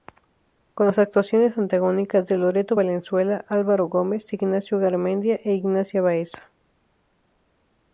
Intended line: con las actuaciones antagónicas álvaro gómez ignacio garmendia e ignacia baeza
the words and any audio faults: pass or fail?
fail